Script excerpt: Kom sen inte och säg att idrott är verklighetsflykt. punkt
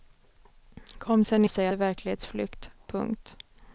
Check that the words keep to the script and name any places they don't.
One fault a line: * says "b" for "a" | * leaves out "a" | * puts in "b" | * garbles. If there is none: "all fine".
* leaves out "inte"
* leaves out "att idrott"